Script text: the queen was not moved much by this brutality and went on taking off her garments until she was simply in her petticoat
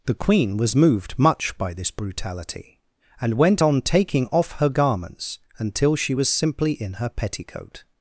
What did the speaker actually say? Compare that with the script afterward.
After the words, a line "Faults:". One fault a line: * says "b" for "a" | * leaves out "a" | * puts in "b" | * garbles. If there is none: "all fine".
the queen was moved much by this brutality and went on taking off her garments until she was simply in her petticoat
Faults:
* leaves out "not"